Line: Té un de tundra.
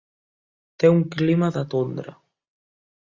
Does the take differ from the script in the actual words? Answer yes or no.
yes